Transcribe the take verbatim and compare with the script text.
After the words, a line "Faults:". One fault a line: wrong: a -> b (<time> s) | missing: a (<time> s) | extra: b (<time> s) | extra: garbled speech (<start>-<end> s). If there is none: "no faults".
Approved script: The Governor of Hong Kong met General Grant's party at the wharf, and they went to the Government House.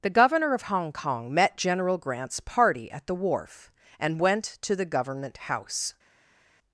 The Governor of Hong Kong met General Grant's party at the wharf, and went to the Government House.
Faults:
missing: they (4.2 s)